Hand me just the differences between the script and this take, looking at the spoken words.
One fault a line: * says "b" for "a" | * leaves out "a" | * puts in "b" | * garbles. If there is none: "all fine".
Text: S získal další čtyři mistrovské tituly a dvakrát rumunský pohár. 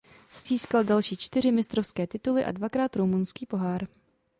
all fine